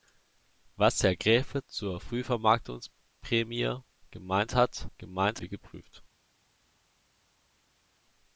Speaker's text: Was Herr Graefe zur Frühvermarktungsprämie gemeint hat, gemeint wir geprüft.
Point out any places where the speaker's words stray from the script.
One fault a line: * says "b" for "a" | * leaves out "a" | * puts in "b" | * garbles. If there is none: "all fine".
all fine